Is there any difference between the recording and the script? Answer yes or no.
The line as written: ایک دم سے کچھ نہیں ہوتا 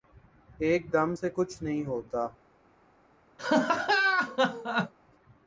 no